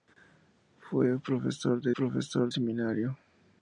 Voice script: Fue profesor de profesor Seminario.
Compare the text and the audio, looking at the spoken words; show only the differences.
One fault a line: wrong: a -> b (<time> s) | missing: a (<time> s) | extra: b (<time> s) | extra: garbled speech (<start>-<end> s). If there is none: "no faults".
no faults